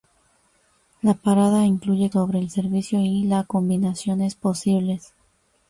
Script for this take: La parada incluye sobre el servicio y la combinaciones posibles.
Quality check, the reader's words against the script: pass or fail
pass